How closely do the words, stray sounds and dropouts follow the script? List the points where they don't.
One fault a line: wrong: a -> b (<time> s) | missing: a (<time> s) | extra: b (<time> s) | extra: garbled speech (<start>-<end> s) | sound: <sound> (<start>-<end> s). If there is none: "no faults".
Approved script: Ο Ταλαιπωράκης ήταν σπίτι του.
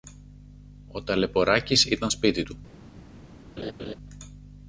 sound: laugh (3.6-4.0 s)